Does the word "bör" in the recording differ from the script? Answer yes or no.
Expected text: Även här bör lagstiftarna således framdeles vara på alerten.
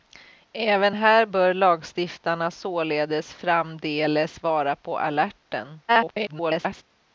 no